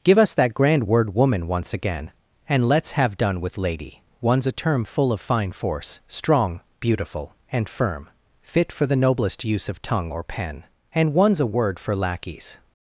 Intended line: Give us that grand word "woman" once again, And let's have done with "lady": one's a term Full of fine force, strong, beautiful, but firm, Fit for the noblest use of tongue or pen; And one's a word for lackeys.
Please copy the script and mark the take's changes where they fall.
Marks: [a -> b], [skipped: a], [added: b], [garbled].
Give us that grand word "woman" once again, And let's have done with "lady": one's a term Full of fine force, strong, beautiful, [but -> and] firm, Fit for the noblest use of tongue or pen; And one's a word for lackeys.